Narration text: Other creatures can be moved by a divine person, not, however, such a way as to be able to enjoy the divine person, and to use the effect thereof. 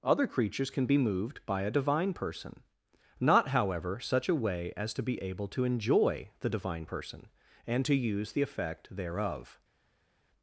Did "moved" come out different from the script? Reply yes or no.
no